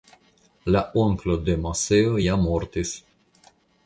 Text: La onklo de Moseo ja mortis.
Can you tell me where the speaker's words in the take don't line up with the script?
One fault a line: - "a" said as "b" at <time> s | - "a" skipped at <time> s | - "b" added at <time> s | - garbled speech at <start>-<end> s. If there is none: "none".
none